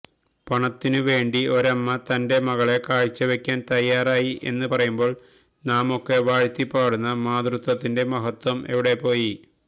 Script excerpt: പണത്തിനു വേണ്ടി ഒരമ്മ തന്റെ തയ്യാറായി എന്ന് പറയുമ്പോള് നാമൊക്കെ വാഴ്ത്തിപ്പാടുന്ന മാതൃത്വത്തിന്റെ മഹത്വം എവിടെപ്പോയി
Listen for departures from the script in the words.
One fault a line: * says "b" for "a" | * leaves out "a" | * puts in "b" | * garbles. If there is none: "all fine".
* puts in "മകളെ കാഴ്ചവയ്ക്കാന്"